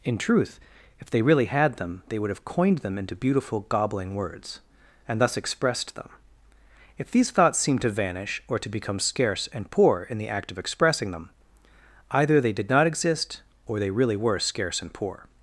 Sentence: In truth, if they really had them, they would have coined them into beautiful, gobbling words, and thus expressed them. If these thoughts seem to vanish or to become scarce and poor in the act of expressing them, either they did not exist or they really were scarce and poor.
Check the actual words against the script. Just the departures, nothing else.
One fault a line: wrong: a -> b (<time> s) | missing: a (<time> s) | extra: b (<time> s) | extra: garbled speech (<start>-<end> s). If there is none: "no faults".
no faults